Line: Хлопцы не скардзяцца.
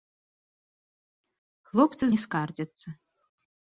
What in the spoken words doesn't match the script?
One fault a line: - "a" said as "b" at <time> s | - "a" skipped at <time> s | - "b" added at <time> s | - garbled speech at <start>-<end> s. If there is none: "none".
none